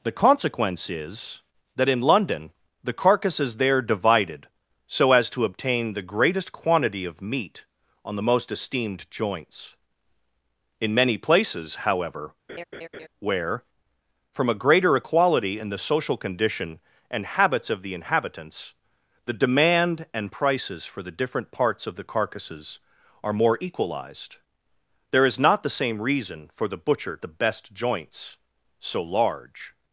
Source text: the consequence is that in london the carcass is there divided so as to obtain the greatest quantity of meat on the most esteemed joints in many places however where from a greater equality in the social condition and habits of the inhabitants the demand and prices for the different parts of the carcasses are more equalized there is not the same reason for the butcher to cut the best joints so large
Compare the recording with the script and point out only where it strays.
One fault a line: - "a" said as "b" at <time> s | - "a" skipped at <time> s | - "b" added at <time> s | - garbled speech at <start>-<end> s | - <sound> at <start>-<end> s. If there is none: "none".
- laugh at 12.5-13.1 s
- "to cut" skipped at 27.2 s